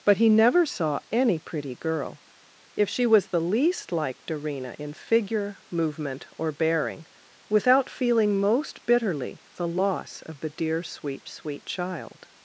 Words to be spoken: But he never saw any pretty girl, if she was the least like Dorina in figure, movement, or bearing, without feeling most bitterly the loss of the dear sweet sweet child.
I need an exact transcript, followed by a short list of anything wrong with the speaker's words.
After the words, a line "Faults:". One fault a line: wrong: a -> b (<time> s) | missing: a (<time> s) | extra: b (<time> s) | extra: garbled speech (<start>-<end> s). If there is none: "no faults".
But he never saw any pretty girl, if she was the least like Dorina in figure, movement, or bearing, without feeling most bitterly the loss of the dear sweet sweet child.
Faults:
no faults